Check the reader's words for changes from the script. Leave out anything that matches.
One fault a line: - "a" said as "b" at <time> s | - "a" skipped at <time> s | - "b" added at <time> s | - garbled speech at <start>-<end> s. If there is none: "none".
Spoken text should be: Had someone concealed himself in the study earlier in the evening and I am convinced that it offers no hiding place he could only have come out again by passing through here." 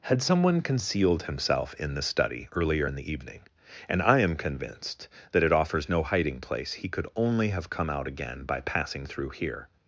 none